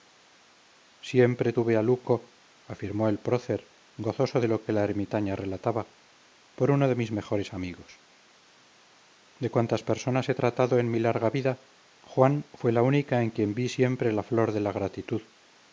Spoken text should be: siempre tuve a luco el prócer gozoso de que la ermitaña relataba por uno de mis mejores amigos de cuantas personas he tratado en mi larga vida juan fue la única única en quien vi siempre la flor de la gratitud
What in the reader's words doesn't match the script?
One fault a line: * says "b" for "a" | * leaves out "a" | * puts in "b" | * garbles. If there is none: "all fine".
* puts in "afirmó"
* puts in "lo"
* leaves out "única"